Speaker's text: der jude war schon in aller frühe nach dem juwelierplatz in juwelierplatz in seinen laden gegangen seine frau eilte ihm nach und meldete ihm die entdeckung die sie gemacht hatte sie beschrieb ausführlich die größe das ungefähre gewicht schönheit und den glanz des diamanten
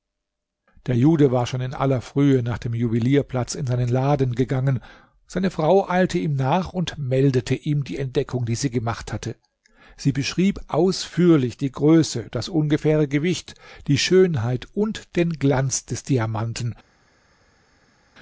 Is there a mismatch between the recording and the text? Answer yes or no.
yes